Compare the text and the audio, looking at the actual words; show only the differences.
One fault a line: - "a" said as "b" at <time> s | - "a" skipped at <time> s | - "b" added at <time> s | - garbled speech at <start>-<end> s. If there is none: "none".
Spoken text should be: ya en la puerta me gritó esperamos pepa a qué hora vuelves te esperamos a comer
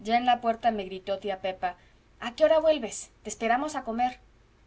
- "esperamos" said as "tía" at 1.2 s